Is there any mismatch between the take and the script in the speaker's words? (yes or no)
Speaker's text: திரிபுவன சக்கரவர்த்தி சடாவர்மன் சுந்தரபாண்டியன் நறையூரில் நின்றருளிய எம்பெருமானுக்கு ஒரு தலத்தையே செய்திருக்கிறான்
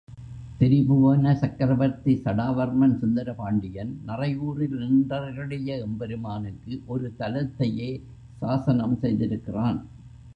yes